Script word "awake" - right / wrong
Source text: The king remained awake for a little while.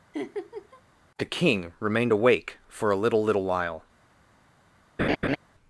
right